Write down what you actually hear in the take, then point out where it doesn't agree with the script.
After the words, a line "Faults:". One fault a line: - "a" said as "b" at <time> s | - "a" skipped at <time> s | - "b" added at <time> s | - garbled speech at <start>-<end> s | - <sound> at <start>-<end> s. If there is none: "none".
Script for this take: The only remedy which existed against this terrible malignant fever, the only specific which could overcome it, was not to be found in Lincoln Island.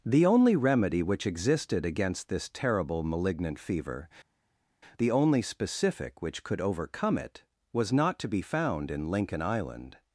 The only remedy which existed against this terrible malignant fever, the only specific which could overcome it, was not to be found in Lincoln Island.
Faults:
none